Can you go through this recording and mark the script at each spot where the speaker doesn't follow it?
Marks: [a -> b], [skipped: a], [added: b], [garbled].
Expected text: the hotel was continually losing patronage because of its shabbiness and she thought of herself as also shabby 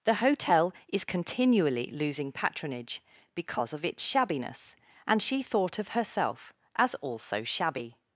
the hotel [was -> is] continually losing patronage because of its shabbiness and she thought of herself as also shabby